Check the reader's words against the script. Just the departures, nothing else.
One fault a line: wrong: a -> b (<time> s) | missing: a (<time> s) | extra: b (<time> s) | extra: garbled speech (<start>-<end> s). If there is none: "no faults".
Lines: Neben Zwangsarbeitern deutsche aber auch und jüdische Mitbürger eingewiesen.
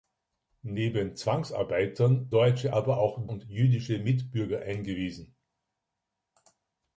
no faults